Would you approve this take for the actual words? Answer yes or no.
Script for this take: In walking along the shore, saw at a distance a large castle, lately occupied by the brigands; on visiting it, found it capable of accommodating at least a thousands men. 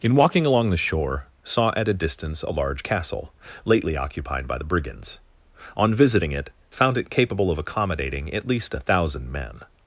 no